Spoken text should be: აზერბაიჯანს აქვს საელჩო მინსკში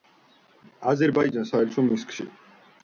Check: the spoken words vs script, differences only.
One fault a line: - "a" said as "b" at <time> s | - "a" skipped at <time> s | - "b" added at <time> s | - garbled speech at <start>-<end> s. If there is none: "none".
- "აქვს" skipped at 1.5 s